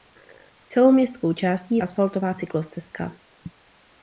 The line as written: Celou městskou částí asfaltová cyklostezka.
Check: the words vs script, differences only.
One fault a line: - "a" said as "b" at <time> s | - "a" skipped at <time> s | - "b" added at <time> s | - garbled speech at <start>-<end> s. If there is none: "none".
none